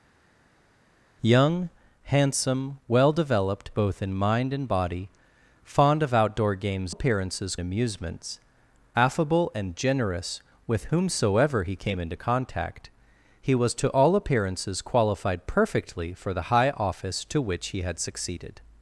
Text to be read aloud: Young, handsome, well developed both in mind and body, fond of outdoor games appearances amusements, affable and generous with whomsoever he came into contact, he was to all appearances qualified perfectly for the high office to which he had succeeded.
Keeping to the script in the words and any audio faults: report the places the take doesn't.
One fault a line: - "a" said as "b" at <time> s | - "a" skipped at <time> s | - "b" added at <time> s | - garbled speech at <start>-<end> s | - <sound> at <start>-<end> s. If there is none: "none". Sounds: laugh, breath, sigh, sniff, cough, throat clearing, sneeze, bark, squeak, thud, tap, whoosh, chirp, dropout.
none